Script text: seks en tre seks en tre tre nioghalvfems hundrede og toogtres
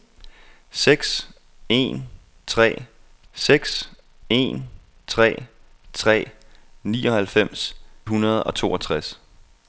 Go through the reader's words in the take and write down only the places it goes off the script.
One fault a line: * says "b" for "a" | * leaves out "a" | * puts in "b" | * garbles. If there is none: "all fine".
all fine